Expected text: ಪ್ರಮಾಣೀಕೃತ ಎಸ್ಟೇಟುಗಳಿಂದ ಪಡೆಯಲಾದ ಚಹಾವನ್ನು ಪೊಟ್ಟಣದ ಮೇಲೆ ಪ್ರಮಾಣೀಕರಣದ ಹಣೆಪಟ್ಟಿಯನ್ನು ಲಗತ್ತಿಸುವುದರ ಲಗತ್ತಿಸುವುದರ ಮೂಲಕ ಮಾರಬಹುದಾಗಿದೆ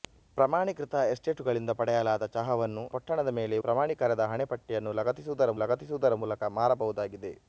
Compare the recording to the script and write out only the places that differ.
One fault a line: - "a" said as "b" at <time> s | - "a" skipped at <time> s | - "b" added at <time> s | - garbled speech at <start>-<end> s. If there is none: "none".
none